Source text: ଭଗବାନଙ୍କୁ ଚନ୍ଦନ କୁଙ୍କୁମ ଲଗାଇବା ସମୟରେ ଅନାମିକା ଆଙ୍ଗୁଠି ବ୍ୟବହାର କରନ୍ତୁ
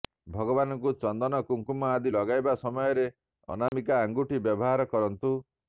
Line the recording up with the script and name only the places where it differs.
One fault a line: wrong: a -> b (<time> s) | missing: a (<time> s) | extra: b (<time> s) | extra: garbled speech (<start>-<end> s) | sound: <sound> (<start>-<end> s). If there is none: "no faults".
extra: ଆଦି (1.9 s)
sound: dropout (3.7-3.7 s)